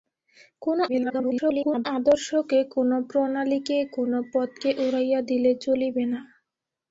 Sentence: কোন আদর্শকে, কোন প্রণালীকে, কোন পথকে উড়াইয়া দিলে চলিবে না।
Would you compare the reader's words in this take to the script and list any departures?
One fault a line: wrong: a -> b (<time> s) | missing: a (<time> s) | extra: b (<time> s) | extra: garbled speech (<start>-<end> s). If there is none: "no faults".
extra: garbled speech (0.9-1.9 s)